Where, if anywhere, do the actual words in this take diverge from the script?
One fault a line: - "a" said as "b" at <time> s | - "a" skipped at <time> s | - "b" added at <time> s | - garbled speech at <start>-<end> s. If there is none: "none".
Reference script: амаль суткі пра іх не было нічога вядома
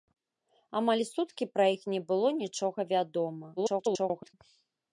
- garbled speech at 3.6-4.3 s